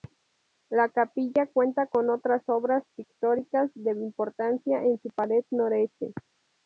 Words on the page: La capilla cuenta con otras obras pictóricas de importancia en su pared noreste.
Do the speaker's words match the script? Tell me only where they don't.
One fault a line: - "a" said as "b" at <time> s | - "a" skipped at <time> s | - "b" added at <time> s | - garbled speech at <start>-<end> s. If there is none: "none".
none